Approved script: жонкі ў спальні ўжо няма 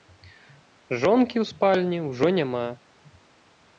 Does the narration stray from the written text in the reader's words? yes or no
no